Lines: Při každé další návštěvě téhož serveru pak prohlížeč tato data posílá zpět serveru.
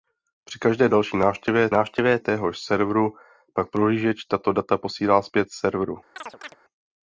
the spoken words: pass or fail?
fail